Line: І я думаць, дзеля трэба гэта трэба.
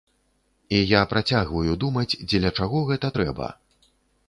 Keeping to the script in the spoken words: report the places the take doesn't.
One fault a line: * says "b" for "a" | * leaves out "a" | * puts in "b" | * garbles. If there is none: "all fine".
* puts in "працягваю"
* says "чаго" for "трэба"